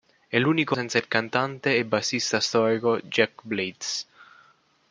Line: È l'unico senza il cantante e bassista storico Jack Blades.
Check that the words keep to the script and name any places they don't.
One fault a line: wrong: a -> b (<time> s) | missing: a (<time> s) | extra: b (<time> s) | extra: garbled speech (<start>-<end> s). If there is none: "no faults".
no faults